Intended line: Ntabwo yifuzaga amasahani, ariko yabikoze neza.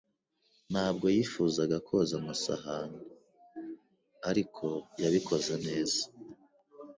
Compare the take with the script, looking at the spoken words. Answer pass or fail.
fail